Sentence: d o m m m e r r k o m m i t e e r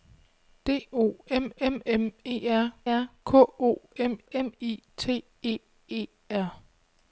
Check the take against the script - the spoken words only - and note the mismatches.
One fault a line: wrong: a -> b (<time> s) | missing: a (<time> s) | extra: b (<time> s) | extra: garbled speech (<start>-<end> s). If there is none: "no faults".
no faults